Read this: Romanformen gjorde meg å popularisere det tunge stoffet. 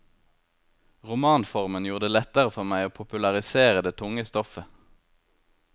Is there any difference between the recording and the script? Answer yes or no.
yes